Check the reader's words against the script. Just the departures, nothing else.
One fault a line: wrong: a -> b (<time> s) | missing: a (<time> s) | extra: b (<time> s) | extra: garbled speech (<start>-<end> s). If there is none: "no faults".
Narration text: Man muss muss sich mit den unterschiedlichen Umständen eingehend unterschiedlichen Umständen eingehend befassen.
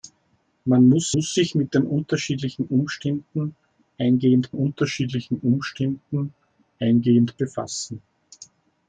no faults